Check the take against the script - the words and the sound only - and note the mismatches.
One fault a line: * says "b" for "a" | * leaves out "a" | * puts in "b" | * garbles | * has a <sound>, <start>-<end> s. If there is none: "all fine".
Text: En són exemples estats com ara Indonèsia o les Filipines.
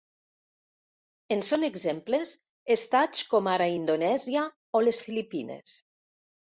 all fine